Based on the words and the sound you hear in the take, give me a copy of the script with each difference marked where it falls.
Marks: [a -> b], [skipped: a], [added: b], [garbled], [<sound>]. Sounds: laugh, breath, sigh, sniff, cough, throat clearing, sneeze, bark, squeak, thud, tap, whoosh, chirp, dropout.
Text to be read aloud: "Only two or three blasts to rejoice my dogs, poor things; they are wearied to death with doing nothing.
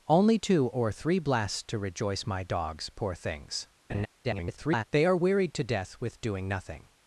"Only two or three blasts to rejoice my dogs, poor things; [laugh] [garbled] they are wearied to death with doing nothing.